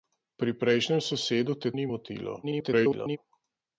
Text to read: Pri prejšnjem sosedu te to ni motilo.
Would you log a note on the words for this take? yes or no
yes